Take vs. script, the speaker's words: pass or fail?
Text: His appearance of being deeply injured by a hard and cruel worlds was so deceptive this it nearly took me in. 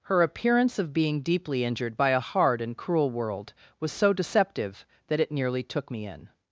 fail